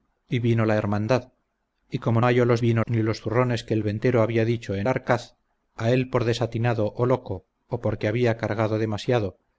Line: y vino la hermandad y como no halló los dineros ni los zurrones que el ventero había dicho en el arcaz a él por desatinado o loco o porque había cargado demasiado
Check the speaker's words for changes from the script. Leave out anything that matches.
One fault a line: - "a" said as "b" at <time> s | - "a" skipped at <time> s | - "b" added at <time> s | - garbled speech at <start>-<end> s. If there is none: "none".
- "no" skipped at 2.2 s
- "dineros" said as "vino" at 2.6 s
- "el" skipped at 4.9 s